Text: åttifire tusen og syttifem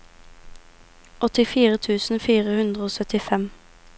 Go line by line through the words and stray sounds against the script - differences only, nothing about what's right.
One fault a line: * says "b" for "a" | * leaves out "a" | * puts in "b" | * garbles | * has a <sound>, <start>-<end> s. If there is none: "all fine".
* puts in "fire hundre"